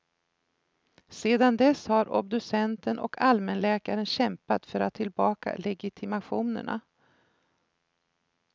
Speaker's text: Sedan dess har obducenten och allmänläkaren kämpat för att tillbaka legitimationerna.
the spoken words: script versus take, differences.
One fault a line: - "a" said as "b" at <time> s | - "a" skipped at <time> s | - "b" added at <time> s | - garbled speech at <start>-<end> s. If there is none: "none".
none